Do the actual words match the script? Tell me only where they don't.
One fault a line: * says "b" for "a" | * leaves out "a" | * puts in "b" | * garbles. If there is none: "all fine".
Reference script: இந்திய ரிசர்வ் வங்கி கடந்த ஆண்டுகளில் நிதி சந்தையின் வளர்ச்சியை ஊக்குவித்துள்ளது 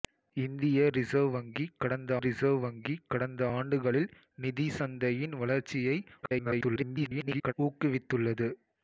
* puts in "ரிசர்வ் வங்கி கடந்த"
* garbles